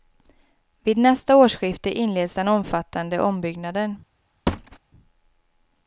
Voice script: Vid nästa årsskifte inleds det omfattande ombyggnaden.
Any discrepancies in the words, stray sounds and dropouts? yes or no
yes